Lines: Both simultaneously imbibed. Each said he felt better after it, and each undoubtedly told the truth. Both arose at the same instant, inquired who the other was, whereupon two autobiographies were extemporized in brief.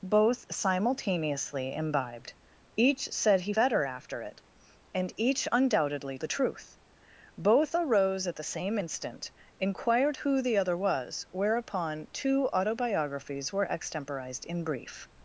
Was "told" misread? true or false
true